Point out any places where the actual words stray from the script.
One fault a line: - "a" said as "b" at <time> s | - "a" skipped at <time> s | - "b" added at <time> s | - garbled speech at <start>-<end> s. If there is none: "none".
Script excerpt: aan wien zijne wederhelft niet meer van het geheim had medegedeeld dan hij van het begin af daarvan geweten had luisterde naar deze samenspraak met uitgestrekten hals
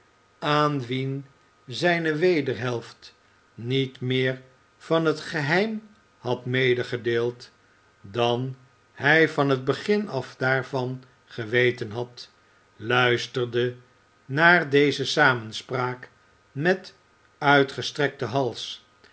none